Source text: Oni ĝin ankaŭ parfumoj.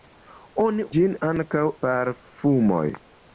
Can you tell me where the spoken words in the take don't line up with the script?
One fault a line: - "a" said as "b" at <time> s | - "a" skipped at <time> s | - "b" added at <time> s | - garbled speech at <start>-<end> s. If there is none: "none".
none